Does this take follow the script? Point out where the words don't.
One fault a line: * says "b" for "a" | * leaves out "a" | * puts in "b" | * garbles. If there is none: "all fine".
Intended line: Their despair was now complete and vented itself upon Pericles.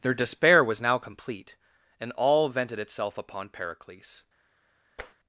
* puts in "all"